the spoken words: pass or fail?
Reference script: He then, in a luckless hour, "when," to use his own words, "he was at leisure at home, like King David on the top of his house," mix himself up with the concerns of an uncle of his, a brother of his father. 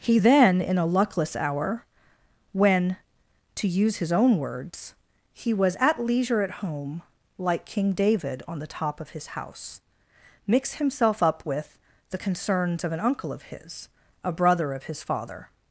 pass